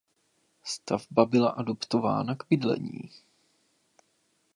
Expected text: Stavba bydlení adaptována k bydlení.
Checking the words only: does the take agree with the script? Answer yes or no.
no